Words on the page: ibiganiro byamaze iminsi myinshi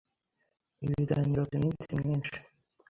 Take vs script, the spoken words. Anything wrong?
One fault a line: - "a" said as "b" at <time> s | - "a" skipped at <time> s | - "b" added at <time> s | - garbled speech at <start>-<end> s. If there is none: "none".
- "byamaze" skipped at 1.4 s